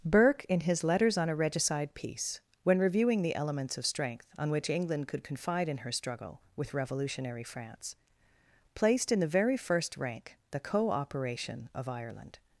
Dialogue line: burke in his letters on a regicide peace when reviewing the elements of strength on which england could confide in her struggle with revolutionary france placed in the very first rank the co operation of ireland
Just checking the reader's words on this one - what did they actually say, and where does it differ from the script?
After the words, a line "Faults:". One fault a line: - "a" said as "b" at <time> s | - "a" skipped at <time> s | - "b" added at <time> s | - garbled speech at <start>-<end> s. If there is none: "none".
burke in his letters on a regicide peace when reviewing the elements of strength on which england could confide in her struggle with revolutionary france placed in the very first rank the co operation of ireland
Faults:
none